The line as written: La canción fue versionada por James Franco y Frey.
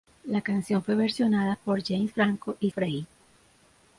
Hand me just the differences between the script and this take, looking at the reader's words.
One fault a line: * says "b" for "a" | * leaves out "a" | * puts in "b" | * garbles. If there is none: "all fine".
all fine